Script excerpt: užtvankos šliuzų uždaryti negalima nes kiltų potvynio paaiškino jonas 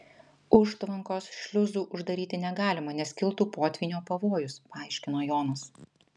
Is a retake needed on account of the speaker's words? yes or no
yes